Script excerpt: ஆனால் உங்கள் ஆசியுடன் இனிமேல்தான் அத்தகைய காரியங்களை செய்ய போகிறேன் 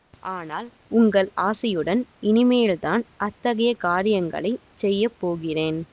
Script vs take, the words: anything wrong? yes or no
no